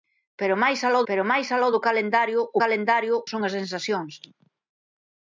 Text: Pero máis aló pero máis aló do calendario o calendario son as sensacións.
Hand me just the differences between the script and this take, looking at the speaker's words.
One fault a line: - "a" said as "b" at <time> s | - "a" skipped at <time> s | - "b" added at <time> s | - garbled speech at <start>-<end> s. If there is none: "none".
none